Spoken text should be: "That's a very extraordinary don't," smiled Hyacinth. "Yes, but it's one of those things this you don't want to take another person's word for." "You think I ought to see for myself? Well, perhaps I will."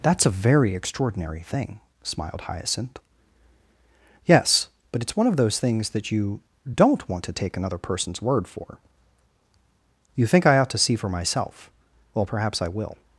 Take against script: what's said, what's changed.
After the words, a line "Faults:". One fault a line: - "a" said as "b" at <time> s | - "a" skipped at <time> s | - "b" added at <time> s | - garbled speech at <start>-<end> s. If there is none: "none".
"That's a very extraordinary thing," smiled Hyacinth. "Yes, but it's one of those things that you don't want to take another person's word for." "You think I ought to see for myself? Well, perhaps I will."
Faults:
- "don't" said as "thing" at 1.4 s
- "this" said as "that" at 5.9 s